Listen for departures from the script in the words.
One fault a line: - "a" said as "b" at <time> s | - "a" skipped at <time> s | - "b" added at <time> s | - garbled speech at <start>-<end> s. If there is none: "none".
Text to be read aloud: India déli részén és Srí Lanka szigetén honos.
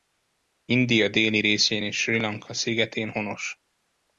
none